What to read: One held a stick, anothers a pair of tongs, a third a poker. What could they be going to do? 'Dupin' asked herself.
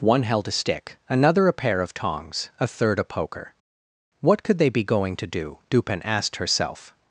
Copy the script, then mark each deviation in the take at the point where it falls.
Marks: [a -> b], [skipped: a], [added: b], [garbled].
One held a stick, [anothers -> another] a pair of tongs, a third a poker. What could they be going to do? 'Dupin' asked herself.